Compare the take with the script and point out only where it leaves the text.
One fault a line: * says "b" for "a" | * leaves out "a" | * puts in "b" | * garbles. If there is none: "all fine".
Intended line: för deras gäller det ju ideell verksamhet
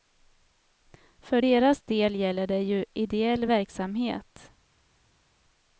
* puts in "del"